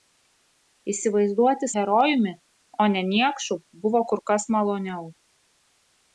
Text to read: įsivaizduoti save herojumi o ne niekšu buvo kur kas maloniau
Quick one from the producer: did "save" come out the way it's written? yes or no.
no